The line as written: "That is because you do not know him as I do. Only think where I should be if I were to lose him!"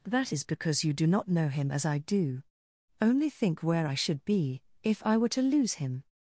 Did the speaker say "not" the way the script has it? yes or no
yes